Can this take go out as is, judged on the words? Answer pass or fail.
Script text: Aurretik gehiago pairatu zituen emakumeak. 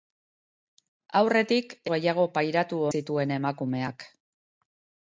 pass